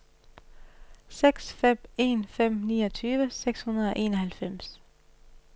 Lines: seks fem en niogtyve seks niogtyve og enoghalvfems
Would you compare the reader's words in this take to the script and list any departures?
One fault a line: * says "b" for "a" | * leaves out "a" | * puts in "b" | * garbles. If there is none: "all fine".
* puts in "fem"
* says "hundrede" for "niogtyve"